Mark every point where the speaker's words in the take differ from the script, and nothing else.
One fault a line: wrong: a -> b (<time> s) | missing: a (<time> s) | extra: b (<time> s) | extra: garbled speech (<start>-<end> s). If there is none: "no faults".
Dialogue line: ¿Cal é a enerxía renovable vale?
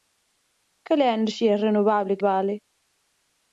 no faults